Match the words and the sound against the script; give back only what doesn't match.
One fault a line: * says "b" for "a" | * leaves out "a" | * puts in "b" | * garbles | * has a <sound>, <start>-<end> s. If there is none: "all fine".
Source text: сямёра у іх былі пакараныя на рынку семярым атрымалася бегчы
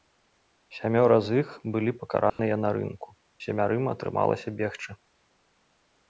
* says "з" for "у"
* has a dropout, 2.3-2.4 s